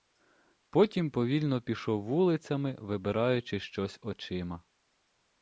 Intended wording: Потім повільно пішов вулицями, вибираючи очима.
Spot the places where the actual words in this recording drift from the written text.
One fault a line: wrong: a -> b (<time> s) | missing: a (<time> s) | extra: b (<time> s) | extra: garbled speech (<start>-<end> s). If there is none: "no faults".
extra: щось (3.6 s)